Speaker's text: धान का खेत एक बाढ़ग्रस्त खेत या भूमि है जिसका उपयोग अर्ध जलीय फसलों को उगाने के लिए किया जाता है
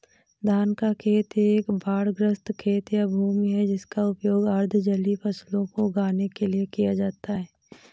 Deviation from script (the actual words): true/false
false